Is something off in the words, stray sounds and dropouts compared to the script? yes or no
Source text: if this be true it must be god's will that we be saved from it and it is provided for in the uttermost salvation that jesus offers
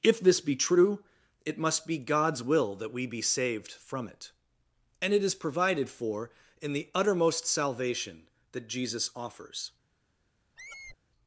yes